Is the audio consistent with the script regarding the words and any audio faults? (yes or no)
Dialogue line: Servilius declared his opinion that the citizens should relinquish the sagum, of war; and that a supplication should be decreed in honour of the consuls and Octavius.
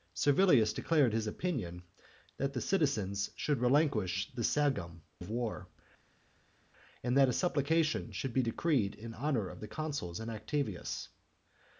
yes